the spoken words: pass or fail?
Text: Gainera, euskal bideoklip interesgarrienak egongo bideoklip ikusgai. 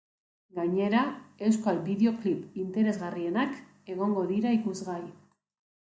fail